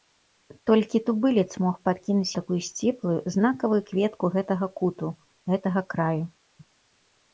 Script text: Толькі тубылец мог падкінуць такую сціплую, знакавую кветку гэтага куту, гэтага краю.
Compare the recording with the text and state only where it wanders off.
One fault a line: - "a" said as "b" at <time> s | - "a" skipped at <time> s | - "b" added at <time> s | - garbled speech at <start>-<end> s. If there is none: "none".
none